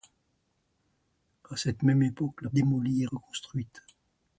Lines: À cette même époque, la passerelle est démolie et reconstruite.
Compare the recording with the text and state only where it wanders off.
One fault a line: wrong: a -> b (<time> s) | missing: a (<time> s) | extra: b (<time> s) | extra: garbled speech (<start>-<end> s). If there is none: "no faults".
missing: passerelle est (2.5 s)